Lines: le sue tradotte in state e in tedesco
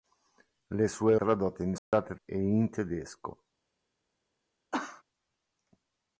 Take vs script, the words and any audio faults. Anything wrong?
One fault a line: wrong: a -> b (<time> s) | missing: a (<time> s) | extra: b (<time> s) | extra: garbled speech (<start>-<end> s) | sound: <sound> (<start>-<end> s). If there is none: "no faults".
sound: dropout (1.8-1.9 s)
sound: cough (4.7-5.0 s)